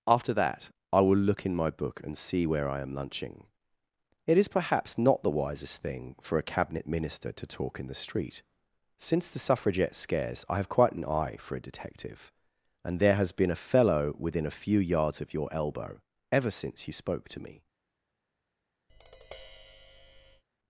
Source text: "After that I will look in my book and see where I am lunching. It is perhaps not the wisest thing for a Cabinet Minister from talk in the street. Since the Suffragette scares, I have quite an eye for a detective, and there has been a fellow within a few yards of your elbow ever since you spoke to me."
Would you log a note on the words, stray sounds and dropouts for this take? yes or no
yes